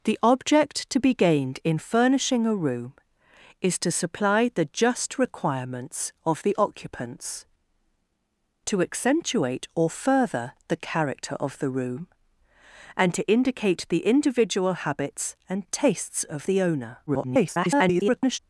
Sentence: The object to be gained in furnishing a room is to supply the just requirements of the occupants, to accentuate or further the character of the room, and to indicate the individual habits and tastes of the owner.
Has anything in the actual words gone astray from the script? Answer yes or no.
yes